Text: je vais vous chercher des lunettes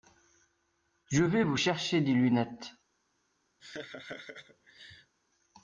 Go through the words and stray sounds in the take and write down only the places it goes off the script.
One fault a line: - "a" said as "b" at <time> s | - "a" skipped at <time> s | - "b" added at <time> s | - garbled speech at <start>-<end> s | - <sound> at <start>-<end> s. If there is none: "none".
- laugh at 3.6-5.1 s